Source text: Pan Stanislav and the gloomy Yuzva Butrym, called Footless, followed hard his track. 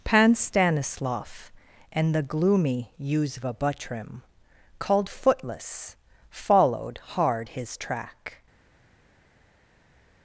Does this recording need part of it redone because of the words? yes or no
no